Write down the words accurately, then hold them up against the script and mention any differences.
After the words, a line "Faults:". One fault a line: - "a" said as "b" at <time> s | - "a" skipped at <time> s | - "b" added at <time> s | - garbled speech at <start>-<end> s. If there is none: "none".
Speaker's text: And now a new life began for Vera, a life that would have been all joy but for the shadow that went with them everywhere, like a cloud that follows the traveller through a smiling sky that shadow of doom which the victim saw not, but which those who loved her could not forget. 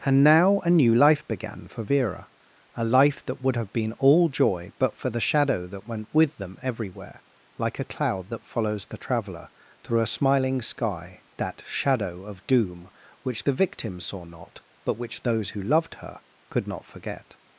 And now a new life began for Vera, a life that would have been all joy but for the shadow that went with them everywhere, like a cloud that follows the traveller through a smiling sky that shadow of doom which the victim saw not, but which those who loved her could not forget.
Faults:
none